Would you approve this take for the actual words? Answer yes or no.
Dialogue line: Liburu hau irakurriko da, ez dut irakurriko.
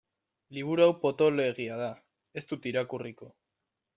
no